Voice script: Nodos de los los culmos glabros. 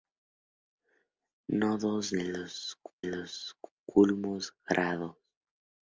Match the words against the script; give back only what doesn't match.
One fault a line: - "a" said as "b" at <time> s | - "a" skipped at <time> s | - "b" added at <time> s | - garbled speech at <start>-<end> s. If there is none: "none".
none